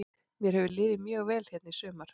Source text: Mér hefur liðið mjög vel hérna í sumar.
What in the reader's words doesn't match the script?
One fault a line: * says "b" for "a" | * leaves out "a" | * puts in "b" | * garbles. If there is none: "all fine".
all fine